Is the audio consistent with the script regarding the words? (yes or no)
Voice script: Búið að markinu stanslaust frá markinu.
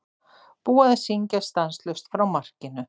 no